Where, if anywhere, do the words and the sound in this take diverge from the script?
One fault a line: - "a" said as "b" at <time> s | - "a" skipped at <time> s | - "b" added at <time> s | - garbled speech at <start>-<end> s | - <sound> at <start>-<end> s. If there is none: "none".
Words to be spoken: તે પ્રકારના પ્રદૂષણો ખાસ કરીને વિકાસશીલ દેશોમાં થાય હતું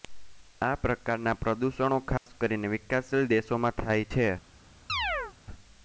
- "તે" said as "આ" at 0.6 s
- dropout at 2.2-2.3 s
- "હતું" said as "છે" at 4.1 s
- chirp at 4.9-5.3 s